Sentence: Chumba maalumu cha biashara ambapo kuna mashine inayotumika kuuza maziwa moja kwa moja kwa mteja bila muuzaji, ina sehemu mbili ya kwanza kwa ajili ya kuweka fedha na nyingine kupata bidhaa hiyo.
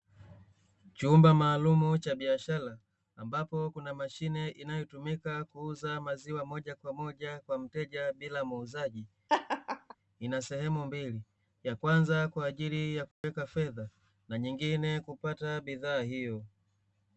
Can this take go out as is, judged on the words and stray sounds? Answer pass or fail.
fail